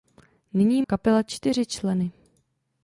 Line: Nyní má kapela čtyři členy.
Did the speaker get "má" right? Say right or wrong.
wrong